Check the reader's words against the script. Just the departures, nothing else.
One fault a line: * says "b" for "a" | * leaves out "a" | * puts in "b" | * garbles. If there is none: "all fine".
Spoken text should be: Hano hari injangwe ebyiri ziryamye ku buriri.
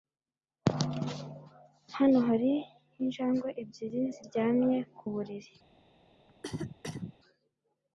all fine